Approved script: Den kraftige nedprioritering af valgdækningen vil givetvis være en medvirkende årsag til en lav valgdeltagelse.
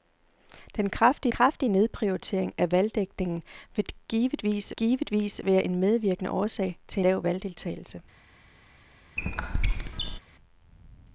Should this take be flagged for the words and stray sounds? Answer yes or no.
yes